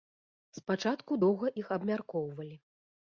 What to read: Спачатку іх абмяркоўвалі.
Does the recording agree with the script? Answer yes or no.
no